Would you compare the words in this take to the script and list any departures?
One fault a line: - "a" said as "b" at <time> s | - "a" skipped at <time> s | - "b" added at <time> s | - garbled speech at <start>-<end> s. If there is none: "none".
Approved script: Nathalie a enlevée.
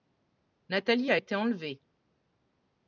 - "été" added at 1.1 s